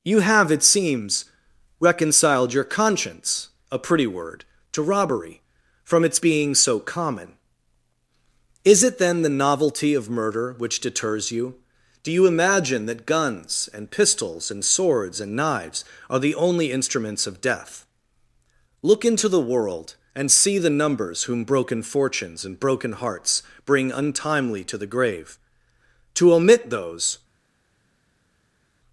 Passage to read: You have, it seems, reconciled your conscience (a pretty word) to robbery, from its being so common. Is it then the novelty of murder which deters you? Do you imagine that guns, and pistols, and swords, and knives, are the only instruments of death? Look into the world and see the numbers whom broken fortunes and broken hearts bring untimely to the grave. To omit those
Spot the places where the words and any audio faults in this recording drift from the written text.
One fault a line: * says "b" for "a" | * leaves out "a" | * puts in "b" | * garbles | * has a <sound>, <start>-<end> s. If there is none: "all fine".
all fine